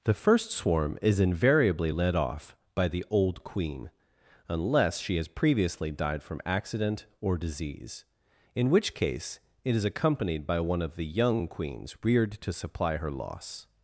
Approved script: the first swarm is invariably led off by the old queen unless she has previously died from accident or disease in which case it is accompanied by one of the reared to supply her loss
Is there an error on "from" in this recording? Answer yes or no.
no